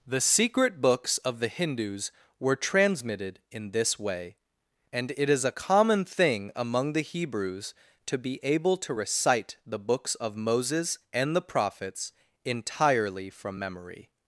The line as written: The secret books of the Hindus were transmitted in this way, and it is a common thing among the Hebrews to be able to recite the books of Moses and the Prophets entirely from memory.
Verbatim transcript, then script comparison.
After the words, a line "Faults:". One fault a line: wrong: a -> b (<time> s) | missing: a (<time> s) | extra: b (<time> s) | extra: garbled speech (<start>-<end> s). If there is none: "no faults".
The secret books of the Hindus were transmitted in this way, and it is a common thing among the Hebrews to be able to recite the books of Moses and the Prophets entirely from memory.
Faults:
no faults